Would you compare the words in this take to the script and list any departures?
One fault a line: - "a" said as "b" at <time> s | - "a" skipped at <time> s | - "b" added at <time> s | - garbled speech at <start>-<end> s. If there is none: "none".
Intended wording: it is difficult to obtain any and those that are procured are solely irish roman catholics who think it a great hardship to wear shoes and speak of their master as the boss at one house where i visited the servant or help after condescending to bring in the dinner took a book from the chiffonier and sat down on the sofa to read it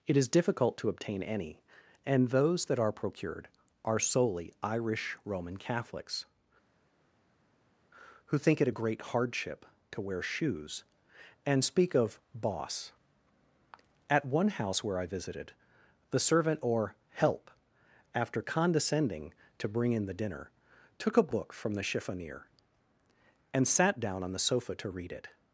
- "their master as the" skipped at 12.2 s